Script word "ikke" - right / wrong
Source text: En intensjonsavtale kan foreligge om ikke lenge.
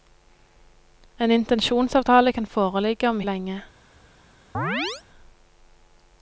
wrong